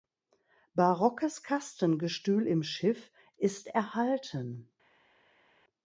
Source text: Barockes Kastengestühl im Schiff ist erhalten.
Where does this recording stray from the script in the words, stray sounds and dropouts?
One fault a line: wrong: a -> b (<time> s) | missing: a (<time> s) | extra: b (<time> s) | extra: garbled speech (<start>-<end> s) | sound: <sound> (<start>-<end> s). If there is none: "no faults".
no faults